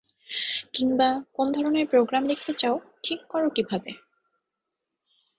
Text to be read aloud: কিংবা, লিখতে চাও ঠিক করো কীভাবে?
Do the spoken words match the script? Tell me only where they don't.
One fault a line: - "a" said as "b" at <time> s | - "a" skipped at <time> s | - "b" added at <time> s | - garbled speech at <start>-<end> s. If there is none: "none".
- "কোন ধরনের প্রোগ্রাম" added at 1.3 s